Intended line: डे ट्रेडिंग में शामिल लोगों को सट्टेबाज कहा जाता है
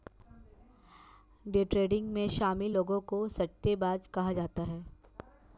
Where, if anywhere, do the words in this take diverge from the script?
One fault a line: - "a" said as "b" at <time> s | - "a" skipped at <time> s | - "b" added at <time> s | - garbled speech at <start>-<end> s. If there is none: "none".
none